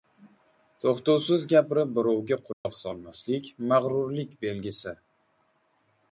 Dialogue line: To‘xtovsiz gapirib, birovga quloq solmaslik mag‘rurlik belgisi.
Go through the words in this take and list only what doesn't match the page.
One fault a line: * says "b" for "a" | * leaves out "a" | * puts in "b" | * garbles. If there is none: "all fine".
all fine